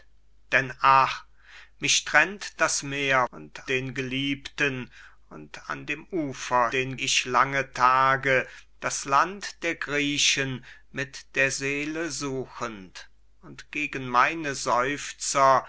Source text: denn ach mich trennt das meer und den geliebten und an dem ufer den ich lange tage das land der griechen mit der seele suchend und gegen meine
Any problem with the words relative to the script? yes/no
no